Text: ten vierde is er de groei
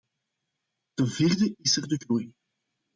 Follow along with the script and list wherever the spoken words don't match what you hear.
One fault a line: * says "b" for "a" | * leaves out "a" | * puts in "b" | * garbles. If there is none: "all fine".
all fine